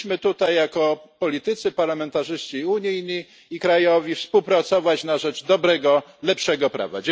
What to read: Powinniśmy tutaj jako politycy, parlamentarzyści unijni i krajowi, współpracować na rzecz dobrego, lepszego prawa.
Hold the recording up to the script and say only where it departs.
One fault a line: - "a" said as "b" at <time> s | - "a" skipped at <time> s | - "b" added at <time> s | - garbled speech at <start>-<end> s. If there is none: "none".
none